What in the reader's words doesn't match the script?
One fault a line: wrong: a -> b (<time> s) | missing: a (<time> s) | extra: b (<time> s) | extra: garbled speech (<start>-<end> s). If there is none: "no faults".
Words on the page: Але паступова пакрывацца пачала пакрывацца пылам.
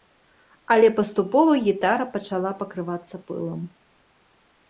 wrong: пакрывацца -> гітара (1.6 s)